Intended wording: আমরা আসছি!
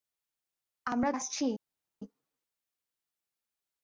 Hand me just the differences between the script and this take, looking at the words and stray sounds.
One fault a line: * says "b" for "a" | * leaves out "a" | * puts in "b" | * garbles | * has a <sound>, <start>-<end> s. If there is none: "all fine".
all fine